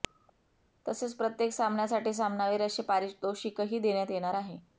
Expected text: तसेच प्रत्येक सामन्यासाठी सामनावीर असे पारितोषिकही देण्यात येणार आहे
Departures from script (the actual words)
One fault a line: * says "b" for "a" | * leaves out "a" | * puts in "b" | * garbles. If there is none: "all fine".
all fine